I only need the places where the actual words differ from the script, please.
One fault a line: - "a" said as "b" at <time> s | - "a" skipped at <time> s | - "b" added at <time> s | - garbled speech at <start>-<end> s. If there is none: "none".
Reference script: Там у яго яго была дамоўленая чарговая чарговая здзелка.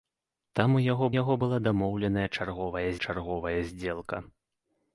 none